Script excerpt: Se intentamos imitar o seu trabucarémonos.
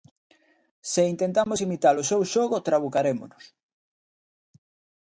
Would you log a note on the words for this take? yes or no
yes